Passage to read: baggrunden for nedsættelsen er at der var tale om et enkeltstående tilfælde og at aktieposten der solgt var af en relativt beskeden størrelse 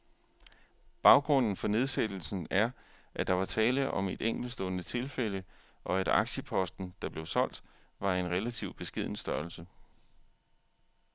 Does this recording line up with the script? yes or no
no